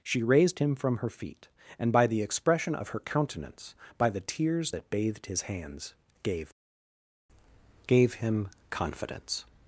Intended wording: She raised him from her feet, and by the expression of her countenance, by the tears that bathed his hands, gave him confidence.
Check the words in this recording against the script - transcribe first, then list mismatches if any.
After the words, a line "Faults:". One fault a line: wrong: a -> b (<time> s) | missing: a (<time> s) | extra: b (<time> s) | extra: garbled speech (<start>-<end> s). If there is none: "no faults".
She raised him from her feet, and by the expression of her countenance, by the tears that bathed his hands, gave gave him confidence.
Faults:
extra: gave (7.9 s)